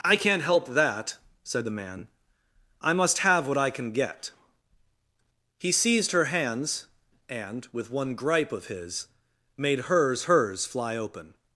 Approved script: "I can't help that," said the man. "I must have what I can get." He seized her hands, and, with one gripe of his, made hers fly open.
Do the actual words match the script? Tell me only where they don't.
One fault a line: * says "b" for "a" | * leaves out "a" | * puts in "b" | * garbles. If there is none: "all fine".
* puts in "hers"